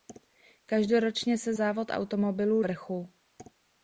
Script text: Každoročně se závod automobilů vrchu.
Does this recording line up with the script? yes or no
yes